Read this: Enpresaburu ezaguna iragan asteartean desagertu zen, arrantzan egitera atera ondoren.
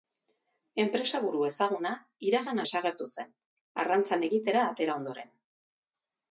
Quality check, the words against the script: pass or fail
fail